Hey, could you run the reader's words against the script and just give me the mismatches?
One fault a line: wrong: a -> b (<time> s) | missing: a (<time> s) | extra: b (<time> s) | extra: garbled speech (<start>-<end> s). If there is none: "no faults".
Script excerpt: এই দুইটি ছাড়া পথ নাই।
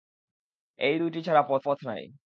extra: পথ (1.7 s)